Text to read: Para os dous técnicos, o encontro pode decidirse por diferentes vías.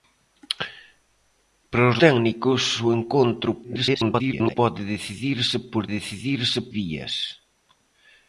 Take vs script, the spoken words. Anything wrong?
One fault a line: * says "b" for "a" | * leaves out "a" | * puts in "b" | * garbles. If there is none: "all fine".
* leaves out "dous"
* garbles
* says "decidirse" for "diferentes"